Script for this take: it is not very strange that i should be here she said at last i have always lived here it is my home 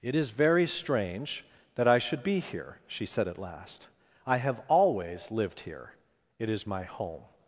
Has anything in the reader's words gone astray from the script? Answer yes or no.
yes